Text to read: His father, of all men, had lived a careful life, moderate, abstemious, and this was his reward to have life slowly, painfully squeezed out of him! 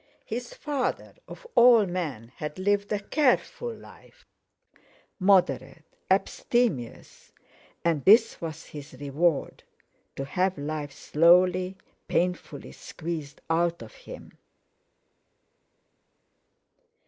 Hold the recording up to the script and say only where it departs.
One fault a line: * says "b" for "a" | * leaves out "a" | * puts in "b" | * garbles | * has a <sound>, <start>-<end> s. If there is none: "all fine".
all fine